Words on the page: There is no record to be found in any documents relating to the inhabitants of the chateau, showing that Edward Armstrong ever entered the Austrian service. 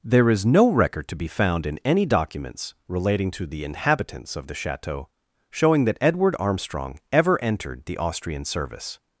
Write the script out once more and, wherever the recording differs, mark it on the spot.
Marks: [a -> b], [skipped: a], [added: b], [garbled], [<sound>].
There is no record to be found in any documents relating to the inhabitants of the chateau, showing that Edward Armstrong ever entered the Austrian service.